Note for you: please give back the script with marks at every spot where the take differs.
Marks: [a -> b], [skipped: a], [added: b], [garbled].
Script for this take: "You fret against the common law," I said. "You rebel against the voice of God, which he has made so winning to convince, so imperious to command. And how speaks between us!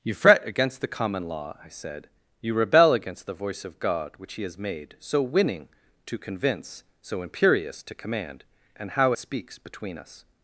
"You fret against the common law," I said. "You rebel against the voice of God, which he has made so winning to convince, so imperious to command. And how speaks between us!